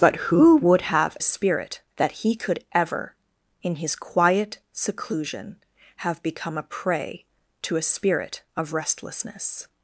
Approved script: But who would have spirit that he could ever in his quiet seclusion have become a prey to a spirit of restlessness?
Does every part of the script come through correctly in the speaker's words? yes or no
yes